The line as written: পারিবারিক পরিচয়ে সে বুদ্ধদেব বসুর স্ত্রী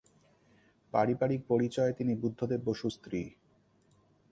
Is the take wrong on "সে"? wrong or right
wrong